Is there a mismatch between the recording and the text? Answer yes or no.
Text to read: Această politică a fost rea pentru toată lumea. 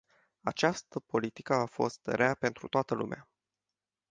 no